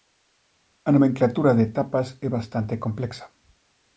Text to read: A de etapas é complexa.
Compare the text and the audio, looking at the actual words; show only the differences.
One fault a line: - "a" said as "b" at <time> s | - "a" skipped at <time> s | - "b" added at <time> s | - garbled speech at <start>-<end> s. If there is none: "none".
- "nomenclatura" added at 0.9 s
- "bastante" added at 2.4 s